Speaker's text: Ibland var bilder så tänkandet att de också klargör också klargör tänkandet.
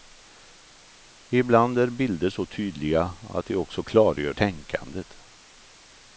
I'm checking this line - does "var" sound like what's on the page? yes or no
no